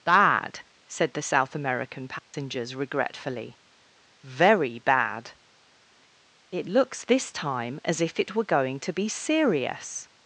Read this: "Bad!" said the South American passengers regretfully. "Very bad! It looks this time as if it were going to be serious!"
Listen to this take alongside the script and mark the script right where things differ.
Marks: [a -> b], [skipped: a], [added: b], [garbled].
"Bad!" said the South American passengers regretfully. "Very bad! It looks this time as if it were going to be serious!"